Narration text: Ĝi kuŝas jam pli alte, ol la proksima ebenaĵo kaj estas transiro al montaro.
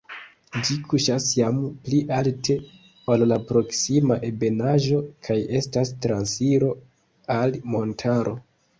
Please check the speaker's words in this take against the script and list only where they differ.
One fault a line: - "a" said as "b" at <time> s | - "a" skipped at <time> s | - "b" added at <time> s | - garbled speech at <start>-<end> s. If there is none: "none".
none